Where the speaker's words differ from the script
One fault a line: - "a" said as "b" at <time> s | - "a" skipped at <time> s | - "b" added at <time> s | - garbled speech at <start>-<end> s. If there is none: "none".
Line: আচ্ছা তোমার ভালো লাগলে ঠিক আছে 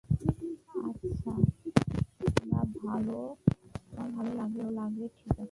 none